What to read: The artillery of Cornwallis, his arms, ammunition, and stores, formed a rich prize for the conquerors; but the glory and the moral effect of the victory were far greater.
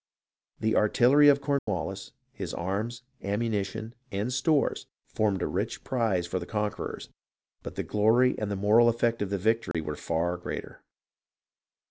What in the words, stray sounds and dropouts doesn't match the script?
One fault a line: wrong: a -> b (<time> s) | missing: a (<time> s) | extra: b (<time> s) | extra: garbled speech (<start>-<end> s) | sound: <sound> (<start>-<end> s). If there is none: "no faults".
sound: dropout (1.6-1.7 s)
sound: dropout (9.7-9.7 s)